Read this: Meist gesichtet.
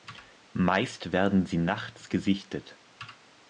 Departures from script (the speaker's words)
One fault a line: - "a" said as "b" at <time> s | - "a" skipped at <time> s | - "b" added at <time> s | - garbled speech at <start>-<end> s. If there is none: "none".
- "werden sie nachts" added at 1.1 s